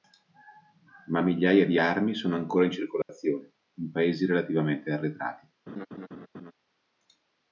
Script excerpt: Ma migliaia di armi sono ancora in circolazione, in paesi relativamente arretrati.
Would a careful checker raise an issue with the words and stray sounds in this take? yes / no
yes